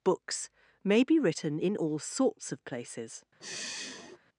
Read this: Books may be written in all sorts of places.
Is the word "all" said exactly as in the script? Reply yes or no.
yes